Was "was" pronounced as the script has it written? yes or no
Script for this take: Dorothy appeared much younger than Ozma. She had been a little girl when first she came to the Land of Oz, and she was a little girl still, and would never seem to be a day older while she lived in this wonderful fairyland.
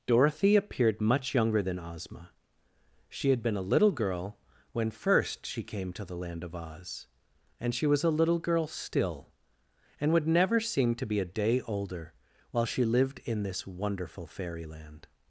yes